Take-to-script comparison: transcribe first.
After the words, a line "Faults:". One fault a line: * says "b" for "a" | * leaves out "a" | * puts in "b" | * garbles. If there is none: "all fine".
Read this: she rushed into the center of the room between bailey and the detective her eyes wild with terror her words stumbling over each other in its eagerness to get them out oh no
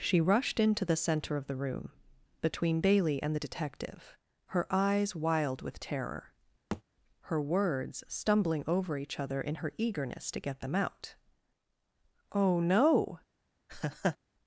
she rushed into the center of the room between bailey and the detective her eyes wild with terror her words stumbling over each other in her eagerness to get them out oh no
Faults:
* says "her" for "its"